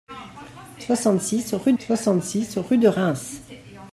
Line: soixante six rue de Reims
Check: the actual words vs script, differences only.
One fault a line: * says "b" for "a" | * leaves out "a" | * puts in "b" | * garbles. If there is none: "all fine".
* puts in "soixante six rue"